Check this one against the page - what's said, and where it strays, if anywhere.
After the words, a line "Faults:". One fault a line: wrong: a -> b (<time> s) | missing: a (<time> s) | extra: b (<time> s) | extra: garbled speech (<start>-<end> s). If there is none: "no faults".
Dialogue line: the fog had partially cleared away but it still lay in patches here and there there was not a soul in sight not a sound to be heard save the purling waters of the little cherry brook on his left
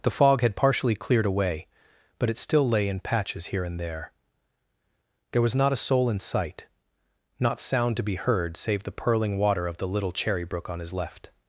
the fog had partially cleared away but it still lay in patches here and there there was not a soul in sight not sound to be heard save the purling water of the little cherry brook on his left
Faults:
missing: a (7.6 s)
wrong: waters -> water (9.4 s)